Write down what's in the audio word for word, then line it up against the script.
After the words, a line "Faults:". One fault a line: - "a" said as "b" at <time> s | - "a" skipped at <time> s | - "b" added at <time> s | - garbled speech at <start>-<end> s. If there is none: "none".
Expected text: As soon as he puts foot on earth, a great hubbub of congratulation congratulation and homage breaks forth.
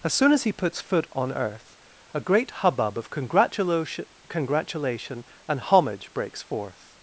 As soon as he puts foot on earth, a great hubbub of congratulation congratulation and homage breaks forth.
Faults:
none